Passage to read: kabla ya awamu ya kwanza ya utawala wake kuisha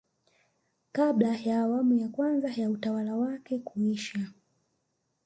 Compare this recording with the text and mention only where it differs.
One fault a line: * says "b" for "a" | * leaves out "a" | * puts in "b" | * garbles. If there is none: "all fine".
all fine